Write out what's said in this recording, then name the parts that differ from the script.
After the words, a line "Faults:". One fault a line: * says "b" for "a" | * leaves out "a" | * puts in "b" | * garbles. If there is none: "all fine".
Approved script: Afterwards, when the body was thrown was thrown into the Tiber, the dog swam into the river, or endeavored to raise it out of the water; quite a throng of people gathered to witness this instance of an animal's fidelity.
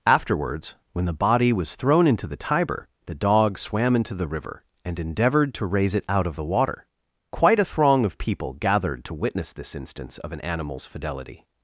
Afterwards, when the body was thrown into the Tiber, the dog swam into the river, and endeavored to raise it out of the water; quite a throng of people gathered to witness this instance of an animal's fidelity.
Faults:
* leaves out "was thrown"
* says "and" for "or"